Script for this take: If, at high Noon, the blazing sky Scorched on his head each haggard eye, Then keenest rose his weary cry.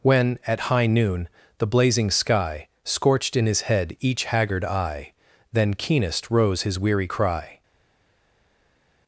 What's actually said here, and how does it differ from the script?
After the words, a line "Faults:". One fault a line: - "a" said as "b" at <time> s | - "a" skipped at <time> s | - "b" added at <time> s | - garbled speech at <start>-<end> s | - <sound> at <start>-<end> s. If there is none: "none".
When, at high Noon, the blazing sky Scorched in his head each haggard eye, Then keenest rose his weary cry.
Faults:
- "If" said as "When" at 0.0 s
- "on" said as "in" at 3.4 s